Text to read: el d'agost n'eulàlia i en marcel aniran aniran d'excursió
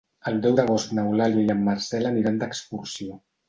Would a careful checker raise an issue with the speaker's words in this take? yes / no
yes